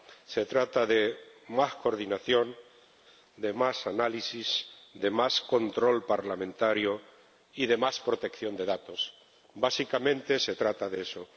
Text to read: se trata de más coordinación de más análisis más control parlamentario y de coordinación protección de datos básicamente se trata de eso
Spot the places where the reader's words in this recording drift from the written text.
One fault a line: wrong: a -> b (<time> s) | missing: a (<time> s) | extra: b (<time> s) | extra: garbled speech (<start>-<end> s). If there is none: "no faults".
extra: de (4.9 s)
wrong: coordinación -> más (7.8 s)